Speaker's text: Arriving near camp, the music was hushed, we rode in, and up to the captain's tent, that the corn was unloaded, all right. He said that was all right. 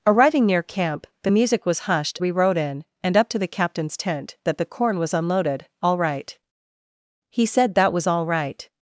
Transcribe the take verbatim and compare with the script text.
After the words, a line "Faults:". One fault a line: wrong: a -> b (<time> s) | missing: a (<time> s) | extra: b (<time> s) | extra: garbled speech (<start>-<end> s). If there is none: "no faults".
Arriving near camp, the music was hushed, we rode in, and up to the captain's tent, that the corn was unloaded, all right. He said that was all right.
Faults:
no faults